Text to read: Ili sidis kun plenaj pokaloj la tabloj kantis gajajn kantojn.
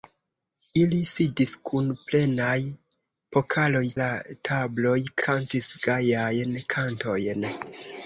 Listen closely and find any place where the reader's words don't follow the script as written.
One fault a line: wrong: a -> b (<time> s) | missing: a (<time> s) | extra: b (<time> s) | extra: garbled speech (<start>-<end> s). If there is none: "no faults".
no faults